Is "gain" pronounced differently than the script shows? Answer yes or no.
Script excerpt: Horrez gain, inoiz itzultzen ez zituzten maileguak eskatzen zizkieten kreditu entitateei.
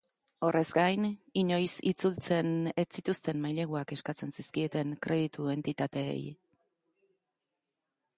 no